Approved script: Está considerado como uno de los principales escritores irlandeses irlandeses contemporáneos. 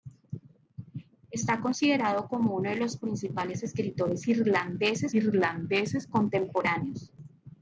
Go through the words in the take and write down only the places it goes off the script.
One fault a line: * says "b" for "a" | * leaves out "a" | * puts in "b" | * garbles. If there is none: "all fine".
all fine